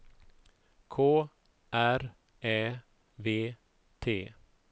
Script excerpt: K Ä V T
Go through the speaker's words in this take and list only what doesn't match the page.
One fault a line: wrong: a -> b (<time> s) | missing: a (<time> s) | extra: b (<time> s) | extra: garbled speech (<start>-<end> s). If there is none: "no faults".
extra: R (1.7 s)